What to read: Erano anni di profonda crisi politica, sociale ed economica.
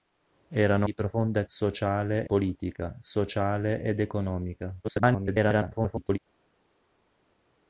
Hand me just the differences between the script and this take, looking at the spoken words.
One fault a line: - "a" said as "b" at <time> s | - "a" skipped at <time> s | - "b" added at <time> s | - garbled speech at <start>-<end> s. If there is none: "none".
- "anni" skipped at 0.9 s
- "crisi" said as "sociale" at 1.5 s
- garbled speech at 4.8-6.2 s